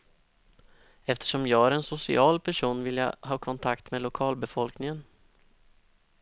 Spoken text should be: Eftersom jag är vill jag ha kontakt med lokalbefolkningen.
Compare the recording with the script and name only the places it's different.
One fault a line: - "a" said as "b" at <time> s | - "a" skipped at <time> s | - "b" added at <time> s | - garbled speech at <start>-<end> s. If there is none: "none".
- "en social person" added at 1.7 s